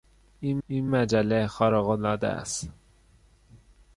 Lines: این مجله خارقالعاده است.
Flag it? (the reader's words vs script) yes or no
yes